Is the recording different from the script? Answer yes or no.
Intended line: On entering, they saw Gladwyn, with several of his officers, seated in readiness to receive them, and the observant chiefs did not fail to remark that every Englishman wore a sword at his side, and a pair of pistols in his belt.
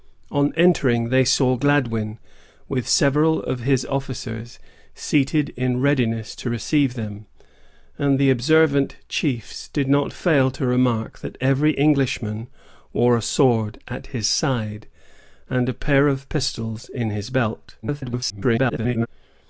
yes